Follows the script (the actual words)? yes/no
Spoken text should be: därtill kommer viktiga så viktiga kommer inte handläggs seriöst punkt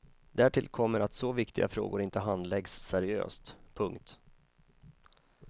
no